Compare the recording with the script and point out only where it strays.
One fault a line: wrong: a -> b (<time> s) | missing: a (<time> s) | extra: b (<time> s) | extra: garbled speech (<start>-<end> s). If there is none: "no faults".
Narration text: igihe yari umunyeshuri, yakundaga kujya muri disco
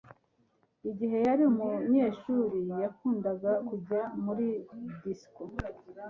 no faults